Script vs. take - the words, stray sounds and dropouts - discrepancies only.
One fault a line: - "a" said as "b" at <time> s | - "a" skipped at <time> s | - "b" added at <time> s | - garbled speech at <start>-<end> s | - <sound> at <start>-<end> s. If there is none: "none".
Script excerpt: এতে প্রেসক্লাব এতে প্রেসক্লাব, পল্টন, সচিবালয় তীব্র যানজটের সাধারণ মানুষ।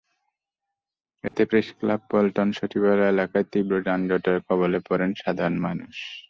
- dropout at 1.3-1.3 s
- "এতে প্রেসক্লাব" skipped at 2.0 s
- "এলাকায়" added at 3.1 s
- "কবলে পড়েন" added at 4.5 s